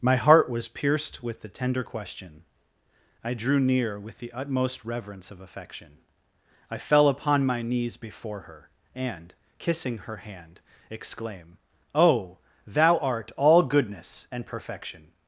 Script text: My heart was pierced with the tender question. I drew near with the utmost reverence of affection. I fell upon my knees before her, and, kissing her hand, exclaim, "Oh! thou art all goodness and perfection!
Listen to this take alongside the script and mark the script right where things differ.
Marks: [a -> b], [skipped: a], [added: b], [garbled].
My heart was pierced with the tender question. I drew near with the utmost reverence of affection. I fell upon my knees before her, and, kissing her hand, exclaim, "Oh! thou art all goodness and perfection!